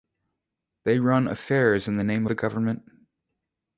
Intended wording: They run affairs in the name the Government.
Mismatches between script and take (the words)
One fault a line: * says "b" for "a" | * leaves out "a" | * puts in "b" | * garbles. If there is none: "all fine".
all fine